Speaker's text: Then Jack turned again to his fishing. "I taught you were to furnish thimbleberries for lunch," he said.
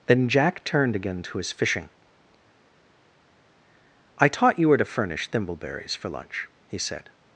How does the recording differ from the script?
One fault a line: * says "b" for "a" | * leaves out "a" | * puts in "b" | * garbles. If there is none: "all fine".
all fine